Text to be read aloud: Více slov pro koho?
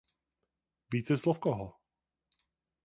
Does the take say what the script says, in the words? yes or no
no